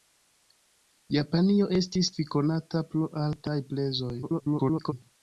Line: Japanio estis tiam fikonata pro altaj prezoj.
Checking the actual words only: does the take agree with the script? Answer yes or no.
no